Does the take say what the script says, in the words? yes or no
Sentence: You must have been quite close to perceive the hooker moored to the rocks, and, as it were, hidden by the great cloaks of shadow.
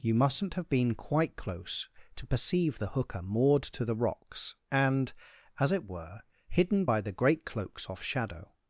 no